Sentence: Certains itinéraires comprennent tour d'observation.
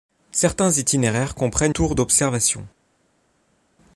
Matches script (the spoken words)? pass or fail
pass